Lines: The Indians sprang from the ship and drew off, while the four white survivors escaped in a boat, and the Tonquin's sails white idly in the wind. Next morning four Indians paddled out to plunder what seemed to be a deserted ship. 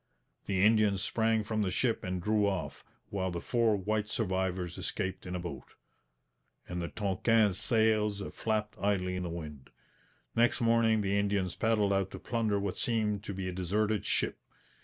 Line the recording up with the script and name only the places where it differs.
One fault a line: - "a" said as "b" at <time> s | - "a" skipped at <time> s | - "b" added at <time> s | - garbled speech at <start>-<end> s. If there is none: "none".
- "white" said as "flapped" at 8.3 s
- "four" said as "the" at 11.0 s